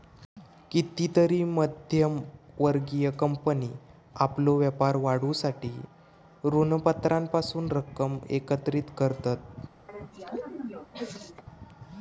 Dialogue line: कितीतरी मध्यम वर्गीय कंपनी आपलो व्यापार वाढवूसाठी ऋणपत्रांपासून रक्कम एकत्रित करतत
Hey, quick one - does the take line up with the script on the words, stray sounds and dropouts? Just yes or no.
no